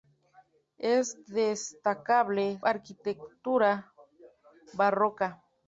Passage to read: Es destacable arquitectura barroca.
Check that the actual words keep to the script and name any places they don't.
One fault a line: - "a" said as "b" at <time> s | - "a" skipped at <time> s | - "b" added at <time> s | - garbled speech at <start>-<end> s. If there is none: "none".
none